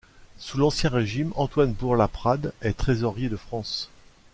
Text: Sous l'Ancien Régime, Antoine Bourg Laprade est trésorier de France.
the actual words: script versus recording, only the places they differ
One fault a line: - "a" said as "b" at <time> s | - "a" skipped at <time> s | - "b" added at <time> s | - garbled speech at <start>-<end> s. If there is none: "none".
none